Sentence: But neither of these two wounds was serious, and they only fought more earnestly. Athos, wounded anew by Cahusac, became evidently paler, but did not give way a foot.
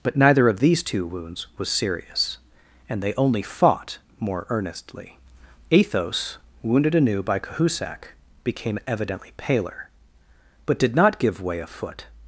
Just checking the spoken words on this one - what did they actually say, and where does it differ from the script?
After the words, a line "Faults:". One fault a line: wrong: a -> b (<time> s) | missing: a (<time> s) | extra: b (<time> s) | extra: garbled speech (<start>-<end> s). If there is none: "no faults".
But neither of these two wounds was serious, and they only fought more earnestly. Athos, wounded anew by Cahusac, became evidently paler, but did not give way a foot.
Faults:
no faults